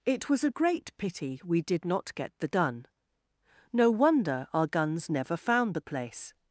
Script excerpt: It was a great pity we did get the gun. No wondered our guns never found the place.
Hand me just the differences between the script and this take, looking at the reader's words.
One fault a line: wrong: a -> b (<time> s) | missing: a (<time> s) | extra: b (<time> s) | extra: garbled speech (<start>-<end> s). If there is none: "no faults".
extra: not (1.8 s)
wrong: wondered -> wonder (3.9 s)